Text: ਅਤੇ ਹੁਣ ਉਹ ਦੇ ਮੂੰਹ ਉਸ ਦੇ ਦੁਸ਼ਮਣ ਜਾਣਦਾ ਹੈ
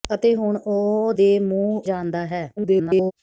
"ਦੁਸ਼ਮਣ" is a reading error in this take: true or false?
true